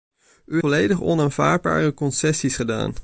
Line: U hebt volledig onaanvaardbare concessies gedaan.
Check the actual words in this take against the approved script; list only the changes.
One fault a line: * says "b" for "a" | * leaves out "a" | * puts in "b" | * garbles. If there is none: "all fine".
* leaves out "hebt"